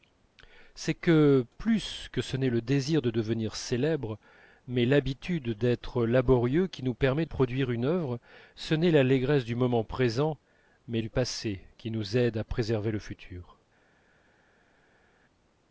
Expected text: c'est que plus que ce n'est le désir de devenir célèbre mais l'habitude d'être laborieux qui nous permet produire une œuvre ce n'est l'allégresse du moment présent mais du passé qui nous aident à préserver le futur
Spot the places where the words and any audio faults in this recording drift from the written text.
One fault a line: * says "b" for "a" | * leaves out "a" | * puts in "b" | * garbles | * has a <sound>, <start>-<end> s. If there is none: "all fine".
all fine